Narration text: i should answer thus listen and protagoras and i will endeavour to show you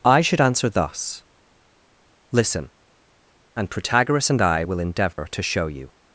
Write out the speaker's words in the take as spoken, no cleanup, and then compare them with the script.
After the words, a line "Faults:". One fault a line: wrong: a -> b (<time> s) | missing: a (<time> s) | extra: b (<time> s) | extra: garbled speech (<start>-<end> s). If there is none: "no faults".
i should answer thus listen and protagoras and i will endeavour to show you
Faults:
no faults